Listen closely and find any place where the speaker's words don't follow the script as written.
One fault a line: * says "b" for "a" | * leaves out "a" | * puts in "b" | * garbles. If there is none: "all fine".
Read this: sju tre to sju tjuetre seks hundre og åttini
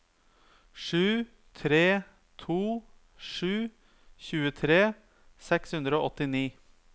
all fine